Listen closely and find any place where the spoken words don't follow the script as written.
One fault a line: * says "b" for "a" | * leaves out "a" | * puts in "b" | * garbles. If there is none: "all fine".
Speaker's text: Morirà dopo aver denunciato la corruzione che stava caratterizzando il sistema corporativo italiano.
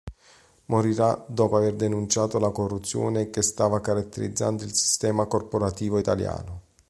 all fine